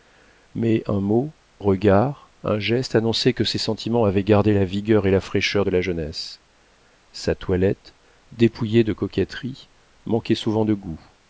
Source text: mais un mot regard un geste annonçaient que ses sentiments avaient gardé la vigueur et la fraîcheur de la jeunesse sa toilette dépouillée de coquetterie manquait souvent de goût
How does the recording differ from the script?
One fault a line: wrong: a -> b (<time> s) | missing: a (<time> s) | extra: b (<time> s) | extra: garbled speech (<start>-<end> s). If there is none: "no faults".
no faults